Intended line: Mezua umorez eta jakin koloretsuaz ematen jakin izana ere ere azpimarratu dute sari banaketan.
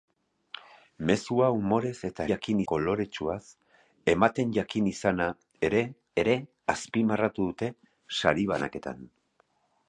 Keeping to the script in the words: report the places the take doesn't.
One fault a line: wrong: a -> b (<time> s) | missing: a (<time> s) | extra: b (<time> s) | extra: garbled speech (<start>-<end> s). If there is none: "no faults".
no faults